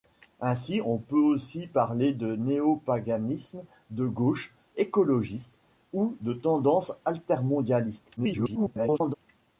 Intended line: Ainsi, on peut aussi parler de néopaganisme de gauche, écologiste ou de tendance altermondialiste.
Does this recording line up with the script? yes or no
no